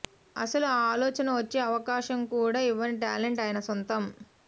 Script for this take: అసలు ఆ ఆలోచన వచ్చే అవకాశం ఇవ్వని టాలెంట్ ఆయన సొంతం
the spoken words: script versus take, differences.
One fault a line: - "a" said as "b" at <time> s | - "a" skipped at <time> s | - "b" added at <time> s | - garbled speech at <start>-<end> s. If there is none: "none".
- "కూడా" added at 2.3 s